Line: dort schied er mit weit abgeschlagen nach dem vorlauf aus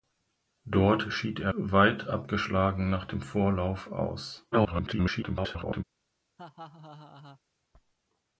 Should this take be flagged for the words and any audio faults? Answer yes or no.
yes